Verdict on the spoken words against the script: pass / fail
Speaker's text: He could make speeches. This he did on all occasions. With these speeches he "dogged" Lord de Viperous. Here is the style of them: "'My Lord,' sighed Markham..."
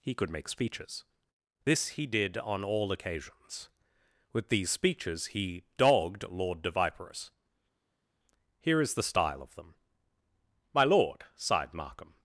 pass